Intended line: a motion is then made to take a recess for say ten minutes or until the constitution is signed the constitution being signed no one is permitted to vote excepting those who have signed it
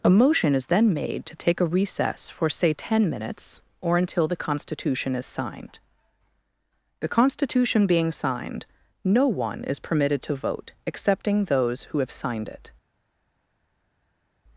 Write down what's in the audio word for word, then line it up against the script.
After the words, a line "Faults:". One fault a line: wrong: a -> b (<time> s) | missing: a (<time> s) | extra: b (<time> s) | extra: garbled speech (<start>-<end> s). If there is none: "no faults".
a motion is then made to take a recess for say ten minutes or until the constitution is signed the constitution being signed no one is permitted to vote excepting those who have signed it
Faults:
no faults